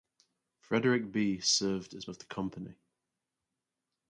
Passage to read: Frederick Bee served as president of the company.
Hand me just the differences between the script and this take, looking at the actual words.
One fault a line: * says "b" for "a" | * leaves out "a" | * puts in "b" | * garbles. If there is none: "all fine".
* leaves out "president"